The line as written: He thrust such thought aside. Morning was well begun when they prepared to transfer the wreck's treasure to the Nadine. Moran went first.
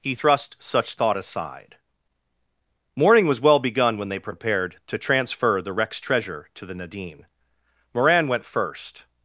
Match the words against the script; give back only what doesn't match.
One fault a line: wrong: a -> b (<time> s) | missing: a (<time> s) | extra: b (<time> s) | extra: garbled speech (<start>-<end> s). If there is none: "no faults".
no faults